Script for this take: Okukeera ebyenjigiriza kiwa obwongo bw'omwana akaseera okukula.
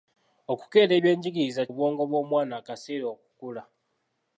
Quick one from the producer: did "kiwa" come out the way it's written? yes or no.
no